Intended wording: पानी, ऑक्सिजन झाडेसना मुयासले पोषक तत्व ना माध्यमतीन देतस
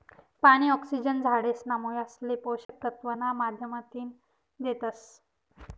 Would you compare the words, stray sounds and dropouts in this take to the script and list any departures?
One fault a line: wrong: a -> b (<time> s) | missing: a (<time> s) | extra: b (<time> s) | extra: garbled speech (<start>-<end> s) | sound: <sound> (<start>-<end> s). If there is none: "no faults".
sound: dropout (2.6-2.7 s)